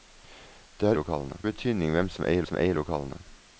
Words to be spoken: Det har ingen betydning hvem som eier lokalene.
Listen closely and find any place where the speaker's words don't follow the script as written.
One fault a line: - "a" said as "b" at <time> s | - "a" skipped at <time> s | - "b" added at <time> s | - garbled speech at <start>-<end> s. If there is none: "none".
- "ingen" said as "lokalene" at 1.0 s
- "som eier" added at 2.4 s